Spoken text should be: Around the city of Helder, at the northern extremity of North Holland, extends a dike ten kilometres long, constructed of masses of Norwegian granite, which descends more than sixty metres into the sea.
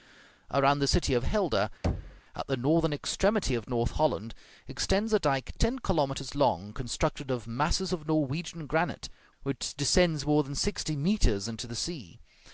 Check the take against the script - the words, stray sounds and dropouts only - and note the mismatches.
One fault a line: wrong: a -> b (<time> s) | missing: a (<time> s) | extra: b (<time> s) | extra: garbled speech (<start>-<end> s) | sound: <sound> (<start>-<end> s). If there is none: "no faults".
sound: thud (1.8-2.2 s)